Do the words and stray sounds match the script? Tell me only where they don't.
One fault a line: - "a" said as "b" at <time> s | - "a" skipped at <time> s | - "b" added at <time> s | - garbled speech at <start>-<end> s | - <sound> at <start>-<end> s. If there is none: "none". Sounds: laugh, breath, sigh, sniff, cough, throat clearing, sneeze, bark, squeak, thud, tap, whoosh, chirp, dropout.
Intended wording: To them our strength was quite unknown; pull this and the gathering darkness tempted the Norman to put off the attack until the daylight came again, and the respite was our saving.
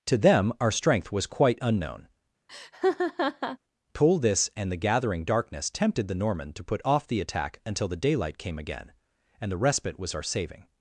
- laugh at 2.5-3.6 s